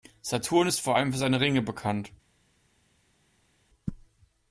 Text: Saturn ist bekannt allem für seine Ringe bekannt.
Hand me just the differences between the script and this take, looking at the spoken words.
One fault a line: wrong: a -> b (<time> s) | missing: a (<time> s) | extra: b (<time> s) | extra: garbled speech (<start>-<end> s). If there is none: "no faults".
wrong: bekannt -> vor (0.8 s)